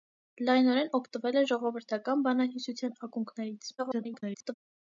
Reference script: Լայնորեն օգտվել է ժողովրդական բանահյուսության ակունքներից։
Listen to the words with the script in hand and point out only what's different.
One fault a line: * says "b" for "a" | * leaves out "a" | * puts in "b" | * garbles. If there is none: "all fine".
* garbles